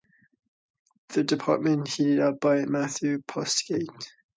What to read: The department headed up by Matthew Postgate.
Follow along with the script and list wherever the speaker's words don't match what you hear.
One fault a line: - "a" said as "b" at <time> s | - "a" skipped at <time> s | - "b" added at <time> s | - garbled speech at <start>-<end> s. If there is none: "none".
none